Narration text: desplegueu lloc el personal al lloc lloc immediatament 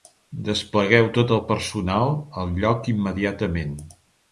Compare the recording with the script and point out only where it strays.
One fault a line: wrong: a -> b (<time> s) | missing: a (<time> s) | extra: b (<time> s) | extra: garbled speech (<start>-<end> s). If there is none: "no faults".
wrong: lloc -> tot (1.2 s)
missing: lloc (3.0 s)